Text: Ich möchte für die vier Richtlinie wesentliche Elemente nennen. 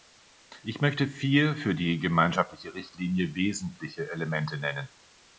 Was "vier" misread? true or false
true